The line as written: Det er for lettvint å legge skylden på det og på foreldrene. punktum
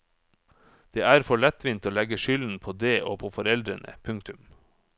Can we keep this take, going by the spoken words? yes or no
yes